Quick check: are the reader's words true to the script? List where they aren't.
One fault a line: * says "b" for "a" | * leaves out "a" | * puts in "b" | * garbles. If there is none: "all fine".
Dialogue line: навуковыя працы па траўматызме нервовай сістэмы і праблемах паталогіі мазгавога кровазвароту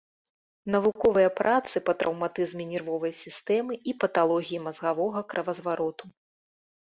* leaves out "праблемах"